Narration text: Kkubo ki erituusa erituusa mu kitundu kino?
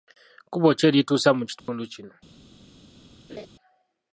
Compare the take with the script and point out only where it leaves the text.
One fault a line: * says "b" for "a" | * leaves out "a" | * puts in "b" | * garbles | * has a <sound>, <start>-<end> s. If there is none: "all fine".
* leaves out "erituusa"
* has a dropout, 1.6-1.7 s
* has a laugh, 3.3-3.5 s